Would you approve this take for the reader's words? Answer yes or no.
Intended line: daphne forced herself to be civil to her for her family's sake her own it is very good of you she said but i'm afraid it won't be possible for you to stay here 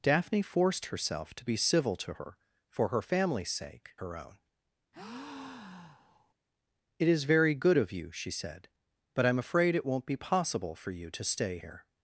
yes